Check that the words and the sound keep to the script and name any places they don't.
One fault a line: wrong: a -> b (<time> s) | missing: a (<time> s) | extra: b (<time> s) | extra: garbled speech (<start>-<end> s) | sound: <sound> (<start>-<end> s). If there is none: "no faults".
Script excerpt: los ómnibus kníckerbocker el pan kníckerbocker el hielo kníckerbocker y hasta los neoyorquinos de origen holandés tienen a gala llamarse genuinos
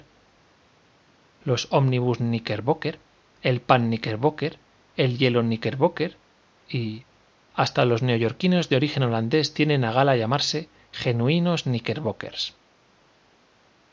no faults